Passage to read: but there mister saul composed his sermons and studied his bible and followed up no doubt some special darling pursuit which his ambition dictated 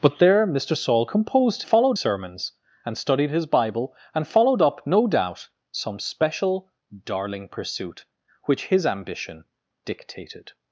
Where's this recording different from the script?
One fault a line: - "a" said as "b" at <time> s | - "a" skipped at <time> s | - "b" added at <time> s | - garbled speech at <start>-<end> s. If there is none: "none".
- "his" said as "followed" at 1.6 s